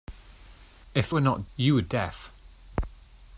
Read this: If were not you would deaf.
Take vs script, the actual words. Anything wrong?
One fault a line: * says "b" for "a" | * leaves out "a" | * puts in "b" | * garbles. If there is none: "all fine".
all fine